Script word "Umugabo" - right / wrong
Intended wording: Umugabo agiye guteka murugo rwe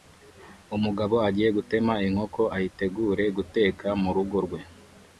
right